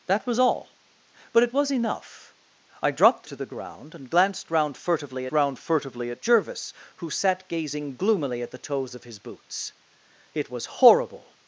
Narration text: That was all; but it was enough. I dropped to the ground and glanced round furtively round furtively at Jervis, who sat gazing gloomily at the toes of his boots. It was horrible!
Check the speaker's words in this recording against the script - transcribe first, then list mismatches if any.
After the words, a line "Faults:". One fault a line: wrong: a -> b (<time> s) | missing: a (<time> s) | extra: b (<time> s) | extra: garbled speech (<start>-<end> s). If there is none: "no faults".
That was all; but it was enough. I dropped to the ground and glanced round furtively round furtively at Jervis, who sat gazing gloomily at the toes of his boots. It was horrible!
Faults:
no faults